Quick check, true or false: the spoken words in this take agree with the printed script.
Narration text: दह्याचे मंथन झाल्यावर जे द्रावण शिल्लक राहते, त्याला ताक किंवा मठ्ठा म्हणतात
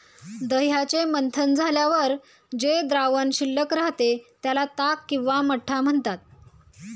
true